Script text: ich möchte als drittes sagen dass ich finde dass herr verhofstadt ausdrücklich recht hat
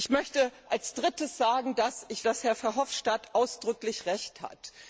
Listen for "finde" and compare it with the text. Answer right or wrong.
wrong